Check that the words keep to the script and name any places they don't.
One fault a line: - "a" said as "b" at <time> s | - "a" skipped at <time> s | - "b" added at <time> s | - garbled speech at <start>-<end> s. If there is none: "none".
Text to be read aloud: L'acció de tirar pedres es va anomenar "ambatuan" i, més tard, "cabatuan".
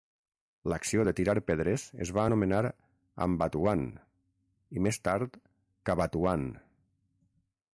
none